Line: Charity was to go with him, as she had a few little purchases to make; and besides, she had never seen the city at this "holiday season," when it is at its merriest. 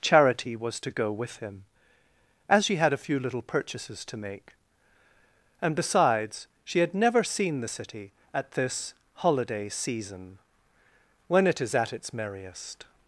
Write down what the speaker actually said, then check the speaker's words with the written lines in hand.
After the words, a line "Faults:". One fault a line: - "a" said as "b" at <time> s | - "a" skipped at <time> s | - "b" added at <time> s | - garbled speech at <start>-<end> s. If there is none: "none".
Charity was to go with him, as she had a few little purchases to make; and besides, she had never seen the city at this "holiday season," when it is at its merriest.
Faults:
none